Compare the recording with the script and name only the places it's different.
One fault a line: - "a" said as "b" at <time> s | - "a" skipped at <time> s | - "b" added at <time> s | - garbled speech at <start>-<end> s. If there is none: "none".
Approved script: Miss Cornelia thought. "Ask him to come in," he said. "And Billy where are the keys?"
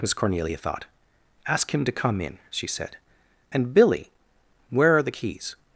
- "he" said as "she" at 2.5 s